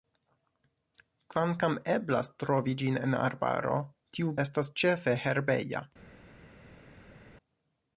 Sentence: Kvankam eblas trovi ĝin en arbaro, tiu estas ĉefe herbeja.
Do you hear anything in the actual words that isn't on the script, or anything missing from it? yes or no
no